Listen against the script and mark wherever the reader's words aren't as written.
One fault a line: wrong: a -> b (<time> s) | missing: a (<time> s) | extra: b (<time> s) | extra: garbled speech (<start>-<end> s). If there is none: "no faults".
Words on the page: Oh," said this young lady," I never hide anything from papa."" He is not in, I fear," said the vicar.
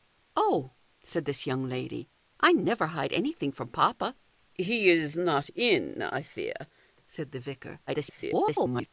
extra: garbled speech (7.9-8.9 s)